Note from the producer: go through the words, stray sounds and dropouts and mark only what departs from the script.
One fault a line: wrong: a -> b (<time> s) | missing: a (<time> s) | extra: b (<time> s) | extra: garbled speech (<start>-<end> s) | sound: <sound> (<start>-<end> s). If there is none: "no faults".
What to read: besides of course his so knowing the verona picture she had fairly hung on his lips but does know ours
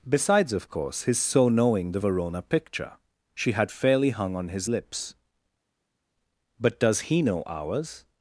extra: he (7.1 s)